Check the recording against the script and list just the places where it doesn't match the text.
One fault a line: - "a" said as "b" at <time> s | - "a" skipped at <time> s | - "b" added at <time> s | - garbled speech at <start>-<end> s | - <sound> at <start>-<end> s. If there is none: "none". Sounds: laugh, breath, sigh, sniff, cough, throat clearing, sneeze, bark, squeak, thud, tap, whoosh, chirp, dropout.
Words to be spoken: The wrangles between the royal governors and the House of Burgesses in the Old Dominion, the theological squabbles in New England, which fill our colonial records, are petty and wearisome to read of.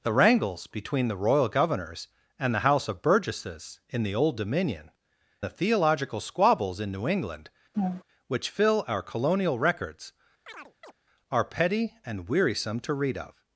- laugh at 7.7-8.0 s
- chirp at 10.5-10.9 s